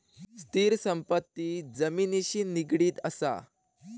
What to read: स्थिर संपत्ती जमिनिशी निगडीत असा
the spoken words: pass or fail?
pass